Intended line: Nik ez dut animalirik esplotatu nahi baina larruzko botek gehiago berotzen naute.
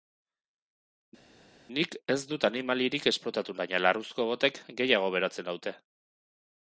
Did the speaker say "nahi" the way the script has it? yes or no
no